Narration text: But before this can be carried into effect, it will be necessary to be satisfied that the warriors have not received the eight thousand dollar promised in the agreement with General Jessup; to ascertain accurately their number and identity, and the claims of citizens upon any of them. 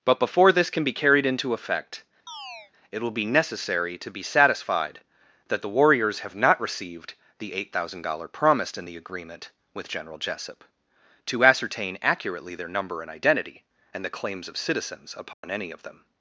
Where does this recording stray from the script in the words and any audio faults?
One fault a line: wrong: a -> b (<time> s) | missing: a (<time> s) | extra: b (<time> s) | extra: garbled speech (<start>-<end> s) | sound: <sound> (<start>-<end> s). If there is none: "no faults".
sound: chirp (2.3-2.7 s)
sound: dropout (15.3-15.4 s)